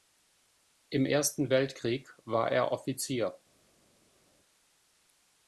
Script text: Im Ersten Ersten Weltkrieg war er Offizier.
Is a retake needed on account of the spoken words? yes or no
yes